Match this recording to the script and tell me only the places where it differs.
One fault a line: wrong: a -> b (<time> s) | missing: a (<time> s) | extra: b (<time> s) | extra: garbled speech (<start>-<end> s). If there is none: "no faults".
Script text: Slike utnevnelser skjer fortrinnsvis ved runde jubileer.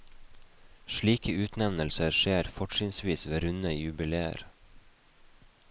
no faults